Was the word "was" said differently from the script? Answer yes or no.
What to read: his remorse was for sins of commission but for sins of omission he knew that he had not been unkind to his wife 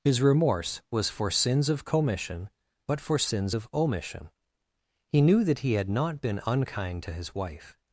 no